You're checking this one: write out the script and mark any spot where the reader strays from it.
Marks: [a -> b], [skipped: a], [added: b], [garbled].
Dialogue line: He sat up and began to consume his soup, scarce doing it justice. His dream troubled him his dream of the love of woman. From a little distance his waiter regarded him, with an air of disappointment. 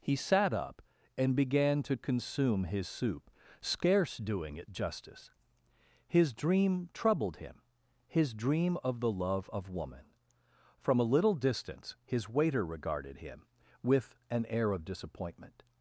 He sat up and began to consume his soup, scarce doing it justice. His dream troubled him his dream of the love of woman. From a little distance his waiter regarded him, with an air of disappointment.